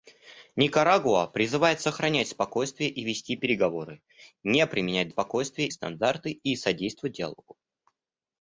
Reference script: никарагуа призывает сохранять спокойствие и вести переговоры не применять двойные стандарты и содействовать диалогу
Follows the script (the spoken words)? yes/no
no